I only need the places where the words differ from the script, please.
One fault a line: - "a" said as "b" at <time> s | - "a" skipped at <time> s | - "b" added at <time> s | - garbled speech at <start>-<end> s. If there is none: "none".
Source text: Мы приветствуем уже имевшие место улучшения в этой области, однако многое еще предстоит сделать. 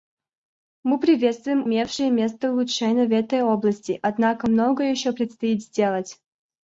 - "уже" skipped at 1.7 s